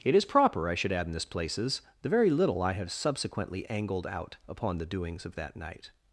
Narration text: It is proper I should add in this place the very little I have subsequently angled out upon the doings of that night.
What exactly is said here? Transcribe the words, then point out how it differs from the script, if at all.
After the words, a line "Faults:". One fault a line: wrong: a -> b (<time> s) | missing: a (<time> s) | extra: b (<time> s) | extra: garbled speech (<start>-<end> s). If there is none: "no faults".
It is proper I should add in this places the very little I have subsequently angled out upon the doings of that night.
Faults:
wrong: place -> places (1.2 s)